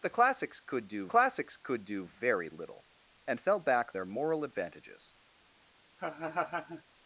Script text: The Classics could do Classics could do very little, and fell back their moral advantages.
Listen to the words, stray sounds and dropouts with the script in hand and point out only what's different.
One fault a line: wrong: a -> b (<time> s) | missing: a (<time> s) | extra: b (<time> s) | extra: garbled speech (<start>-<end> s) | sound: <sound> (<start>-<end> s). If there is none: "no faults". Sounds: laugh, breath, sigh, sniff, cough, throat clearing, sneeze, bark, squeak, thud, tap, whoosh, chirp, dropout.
sound: laugh (6.0-6.8 s)